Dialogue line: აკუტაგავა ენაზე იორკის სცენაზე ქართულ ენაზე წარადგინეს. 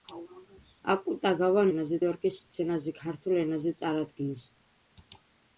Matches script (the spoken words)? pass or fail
pass